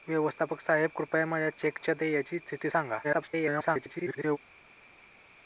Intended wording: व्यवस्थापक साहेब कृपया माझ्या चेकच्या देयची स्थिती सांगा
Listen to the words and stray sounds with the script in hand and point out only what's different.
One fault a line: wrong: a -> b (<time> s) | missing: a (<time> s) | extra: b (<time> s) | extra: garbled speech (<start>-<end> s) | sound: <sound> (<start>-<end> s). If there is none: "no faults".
extra: garbled speech (3.0-4.4 s)